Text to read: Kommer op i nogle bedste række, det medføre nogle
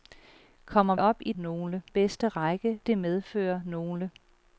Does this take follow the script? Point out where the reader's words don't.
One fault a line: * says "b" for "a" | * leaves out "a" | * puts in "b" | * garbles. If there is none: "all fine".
all fine